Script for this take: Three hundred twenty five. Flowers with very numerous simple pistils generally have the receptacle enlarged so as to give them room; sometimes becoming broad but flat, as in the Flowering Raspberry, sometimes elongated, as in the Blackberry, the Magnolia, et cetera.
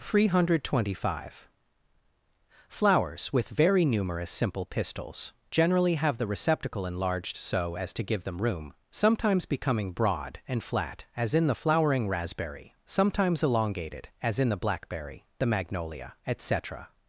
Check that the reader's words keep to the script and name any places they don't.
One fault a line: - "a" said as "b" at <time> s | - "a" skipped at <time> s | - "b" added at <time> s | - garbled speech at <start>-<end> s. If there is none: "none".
- "but" said as "and" at 10.5 s